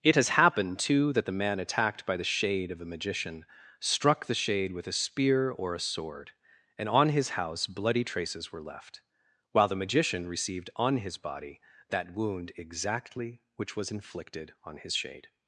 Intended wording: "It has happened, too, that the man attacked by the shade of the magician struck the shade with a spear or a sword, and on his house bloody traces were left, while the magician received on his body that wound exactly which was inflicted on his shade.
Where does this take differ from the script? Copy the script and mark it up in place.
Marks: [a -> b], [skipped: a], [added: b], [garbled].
"It has happened, too, that the man attacked by the shade of [the -> a] magician struck the shade with a spear or a sword, and on his house bloody traces were left, while the magician received on his body that wound exactly which was inflicted on his shade.